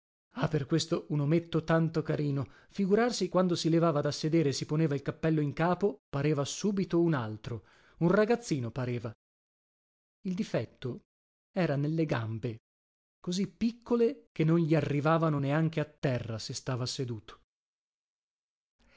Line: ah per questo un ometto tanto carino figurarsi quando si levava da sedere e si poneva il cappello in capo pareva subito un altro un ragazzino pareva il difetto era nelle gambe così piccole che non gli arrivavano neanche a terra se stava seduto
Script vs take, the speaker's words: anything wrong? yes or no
no